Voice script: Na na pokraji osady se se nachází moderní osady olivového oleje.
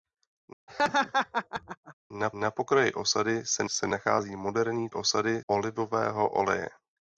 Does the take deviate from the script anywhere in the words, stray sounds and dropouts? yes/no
yes